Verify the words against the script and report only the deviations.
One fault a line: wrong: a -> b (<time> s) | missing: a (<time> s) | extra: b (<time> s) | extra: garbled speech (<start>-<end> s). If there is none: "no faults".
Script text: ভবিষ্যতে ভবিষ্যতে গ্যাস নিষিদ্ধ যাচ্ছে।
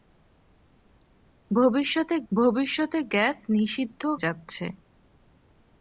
no faults